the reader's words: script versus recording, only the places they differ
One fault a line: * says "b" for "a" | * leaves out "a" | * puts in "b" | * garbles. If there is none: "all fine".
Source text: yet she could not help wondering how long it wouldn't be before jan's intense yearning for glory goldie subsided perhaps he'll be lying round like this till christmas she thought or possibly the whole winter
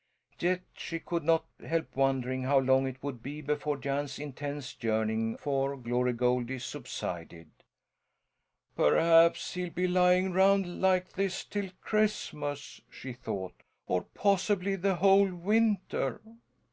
* says "would" for "wouldn't"